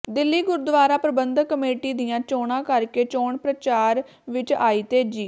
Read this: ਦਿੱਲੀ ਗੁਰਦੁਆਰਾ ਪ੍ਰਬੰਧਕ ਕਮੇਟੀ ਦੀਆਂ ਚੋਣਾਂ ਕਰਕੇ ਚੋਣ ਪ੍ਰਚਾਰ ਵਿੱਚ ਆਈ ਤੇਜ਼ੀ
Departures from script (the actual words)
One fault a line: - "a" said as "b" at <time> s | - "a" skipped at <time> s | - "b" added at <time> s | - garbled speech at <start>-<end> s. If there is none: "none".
none